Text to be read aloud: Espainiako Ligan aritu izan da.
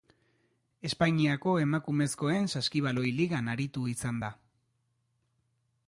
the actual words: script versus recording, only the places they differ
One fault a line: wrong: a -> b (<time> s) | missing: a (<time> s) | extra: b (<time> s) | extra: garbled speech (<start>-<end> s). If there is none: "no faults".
extra: Emakumezkoen Saskibaloi (1.6 s)